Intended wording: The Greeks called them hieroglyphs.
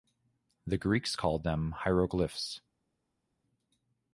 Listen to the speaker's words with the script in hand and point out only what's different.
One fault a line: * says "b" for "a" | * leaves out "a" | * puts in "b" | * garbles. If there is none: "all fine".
all fine